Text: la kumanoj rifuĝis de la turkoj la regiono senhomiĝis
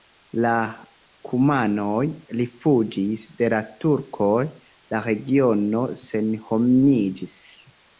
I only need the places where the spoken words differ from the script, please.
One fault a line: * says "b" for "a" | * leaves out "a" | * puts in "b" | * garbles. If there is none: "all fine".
all fine